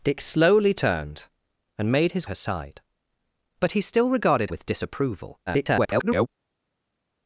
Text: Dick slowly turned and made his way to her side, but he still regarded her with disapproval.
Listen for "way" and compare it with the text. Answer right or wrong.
wrong